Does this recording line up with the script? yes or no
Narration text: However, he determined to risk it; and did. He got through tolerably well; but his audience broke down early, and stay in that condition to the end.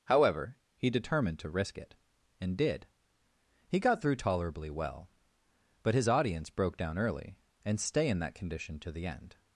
yes